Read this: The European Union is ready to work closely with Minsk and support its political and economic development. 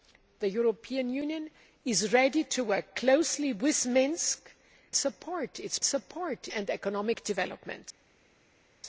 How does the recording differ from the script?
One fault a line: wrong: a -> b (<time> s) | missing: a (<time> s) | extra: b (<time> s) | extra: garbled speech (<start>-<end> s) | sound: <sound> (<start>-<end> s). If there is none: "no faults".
missing: and (4.5 s)
wrong: political -> support (5.8 s)